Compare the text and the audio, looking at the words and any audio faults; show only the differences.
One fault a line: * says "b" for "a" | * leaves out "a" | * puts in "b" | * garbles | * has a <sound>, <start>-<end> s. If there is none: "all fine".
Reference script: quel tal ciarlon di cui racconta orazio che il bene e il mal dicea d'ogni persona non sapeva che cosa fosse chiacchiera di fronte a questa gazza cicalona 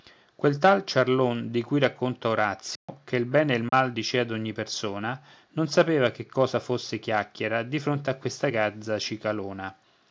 * has a dropout, 2.8-2.9 s
* has a dropout, 3.7-3.7 s